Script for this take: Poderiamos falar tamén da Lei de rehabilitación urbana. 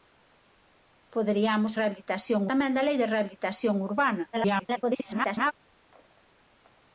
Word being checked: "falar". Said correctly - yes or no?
no